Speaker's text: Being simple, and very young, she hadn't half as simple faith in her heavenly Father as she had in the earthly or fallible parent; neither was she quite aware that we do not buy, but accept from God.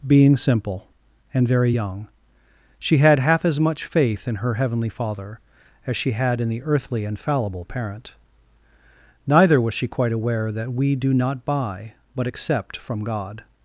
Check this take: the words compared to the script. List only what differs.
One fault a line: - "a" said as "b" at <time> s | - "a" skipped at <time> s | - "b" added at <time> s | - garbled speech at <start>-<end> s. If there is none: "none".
- "hadn't" said as "had" at 3.0 s
- "simple" said as "much" at 3.6 s
- "or" said as "and" at 7.0 s